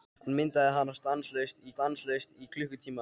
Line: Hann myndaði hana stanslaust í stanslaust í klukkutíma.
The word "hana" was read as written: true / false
true